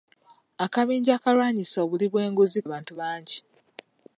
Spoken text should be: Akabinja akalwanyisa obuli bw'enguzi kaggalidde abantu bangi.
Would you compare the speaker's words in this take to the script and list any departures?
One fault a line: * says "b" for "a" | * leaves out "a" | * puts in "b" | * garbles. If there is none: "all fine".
* leaves out "kaggalidde"